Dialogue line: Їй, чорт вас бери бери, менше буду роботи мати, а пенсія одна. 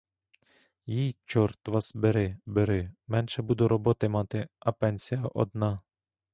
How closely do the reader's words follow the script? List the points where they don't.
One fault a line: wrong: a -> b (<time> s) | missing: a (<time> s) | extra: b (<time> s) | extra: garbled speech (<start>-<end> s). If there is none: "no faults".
no faults